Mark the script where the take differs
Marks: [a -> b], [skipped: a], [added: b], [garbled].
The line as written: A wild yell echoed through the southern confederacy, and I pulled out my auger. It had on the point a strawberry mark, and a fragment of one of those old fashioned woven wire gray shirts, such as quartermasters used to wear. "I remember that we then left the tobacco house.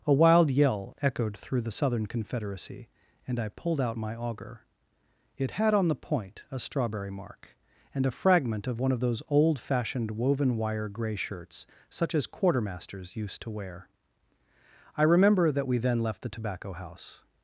A wild yell echoed through the southern confederacy, and I pulled out my auger. It had on the point a strawberry mark, and a fragment of one of those old fashioned woven wire gray shirts, such as quartermasters used to wear. "I remember that we then left the tobacco house.